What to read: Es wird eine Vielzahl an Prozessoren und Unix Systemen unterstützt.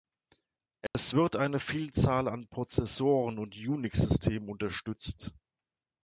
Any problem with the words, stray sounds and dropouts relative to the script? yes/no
yes